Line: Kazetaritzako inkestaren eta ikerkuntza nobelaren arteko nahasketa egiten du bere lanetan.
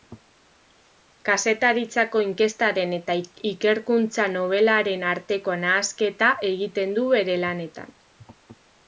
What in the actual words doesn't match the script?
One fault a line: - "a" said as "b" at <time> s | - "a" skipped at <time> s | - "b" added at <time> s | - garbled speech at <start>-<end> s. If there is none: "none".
none